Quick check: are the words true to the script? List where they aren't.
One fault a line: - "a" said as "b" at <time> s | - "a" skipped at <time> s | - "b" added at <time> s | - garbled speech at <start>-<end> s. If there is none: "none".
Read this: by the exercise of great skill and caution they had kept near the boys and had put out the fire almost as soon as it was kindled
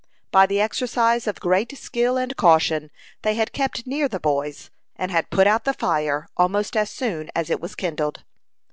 none